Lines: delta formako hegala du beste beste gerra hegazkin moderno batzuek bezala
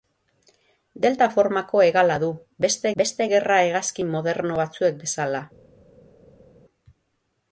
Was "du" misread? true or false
false